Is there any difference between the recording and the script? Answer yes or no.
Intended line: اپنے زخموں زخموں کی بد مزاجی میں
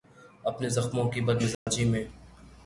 yes